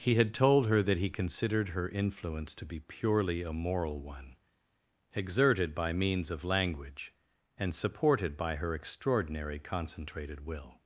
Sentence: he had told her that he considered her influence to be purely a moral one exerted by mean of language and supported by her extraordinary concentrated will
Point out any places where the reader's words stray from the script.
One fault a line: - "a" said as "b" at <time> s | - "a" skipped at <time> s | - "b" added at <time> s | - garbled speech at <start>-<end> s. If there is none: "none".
- "mean" said as "means" at 5.9 s